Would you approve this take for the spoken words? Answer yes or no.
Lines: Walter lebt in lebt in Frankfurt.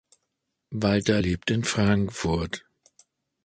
no